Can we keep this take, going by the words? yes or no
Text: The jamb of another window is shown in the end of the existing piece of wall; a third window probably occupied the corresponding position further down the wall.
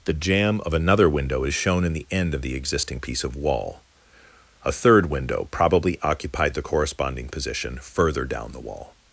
yes